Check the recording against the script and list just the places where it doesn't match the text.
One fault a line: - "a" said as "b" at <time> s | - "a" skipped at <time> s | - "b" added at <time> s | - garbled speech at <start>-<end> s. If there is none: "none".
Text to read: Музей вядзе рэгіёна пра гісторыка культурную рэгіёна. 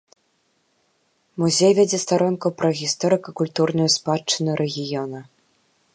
- "рэгіёна" said as "старонку" at 2.0 s
- "спадчыну" added at 4.0 s